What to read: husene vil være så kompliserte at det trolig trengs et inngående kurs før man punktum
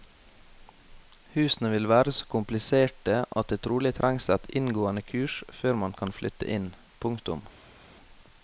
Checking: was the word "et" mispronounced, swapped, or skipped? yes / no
no